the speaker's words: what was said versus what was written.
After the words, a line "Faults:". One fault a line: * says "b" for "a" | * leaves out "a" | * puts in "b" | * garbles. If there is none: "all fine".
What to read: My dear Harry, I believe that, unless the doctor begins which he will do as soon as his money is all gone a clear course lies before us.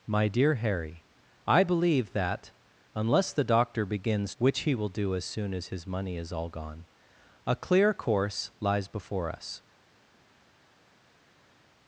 My dear Harry, I believe that, unless the doctor begins which he will do as soon as his money is all gone a clear course lies before us.
Faults:
all fine